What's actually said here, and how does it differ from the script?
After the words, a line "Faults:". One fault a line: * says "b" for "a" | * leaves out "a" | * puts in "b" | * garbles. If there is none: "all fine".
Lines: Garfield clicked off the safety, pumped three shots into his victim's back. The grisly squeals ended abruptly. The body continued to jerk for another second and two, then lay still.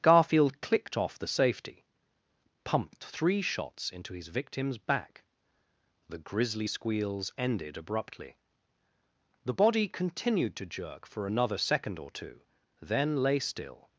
Garfield clicked off the safety, pumped three shots into his victim's back. The grisly squeals ended abruptly. The body continued to jerk for another second or two, then lay still.
Faults:
* says "or" for "and"